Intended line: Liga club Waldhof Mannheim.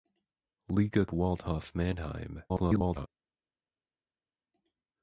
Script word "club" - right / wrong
wrong